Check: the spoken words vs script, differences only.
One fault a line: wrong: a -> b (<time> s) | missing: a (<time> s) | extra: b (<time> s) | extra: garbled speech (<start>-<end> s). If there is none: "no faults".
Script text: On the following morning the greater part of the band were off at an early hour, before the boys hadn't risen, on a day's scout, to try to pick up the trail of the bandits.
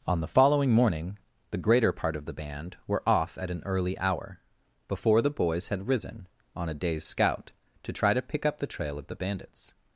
wrong: hadn't -> had (5.7 s)